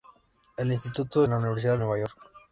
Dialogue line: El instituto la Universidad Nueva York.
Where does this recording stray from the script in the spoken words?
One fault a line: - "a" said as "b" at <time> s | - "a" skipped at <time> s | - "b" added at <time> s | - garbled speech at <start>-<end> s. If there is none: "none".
none